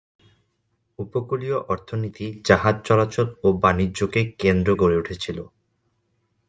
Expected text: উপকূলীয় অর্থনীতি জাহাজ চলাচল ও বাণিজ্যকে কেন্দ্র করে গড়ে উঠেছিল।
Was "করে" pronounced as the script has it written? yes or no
no